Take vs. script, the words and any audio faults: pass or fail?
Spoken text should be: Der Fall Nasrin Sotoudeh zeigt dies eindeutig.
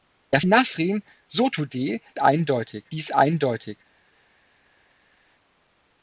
fail